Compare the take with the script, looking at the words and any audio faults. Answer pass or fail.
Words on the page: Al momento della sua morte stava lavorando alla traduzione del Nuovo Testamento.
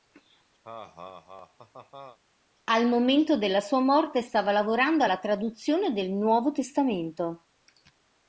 fail